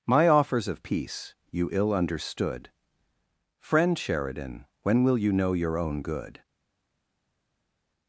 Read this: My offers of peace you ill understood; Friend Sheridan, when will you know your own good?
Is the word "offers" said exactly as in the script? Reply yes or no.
yes